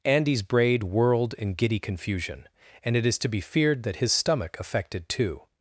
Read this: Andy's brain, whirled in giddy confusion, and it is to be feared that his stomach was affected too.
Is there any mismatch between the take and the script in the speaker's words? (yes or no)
yes